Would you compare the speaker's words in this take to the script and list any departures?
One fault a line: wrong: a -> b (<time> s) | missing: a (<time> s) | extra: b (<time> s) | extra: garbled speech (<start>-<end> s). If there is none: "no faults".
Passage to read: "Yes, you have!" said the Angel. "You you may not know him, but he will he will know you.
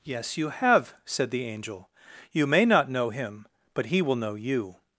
missing: you (2.5 s)
missing: he will (4.2 s)